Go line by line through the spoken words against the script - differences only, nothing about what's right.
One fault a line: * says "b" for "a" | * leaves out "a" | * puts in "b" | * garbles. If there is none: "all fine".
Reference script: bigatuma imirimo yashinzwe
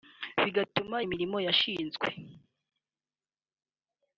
all fine